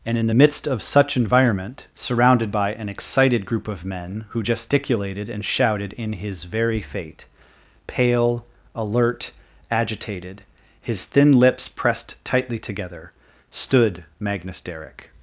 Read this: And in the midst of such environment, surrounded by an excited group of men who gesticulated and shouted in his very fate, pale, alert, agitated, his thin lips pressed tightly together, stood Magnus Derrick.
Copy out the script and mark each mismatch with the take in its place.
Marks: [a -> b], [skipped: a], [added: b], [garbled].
And in the midst of such environment, surrounded by an excited group of men who gesticulated and shouted in his very fate, pale, alert, agitated, his thin lips pressed tightly together, stood Magnus Derrick.